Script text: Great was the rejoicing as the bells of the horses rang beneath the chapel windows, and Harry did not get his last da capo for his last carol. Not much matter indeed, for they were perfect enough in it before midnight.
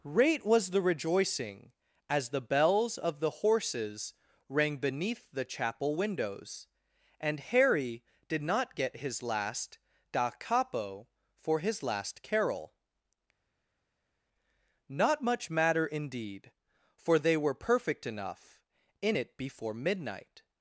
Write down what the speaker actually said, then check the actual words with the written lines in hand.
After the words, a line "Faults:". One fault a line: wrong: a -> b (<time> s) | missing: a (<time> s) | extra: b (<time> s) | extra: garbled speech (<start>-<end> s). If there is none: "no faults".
Great was the rejoicing as the bells of the horses rang beneath the chapel windows, and Harry did not get his last da capo for his last carol. Not much matter indeed, for they were perfect enough in it before midnight.
Faults:
no faults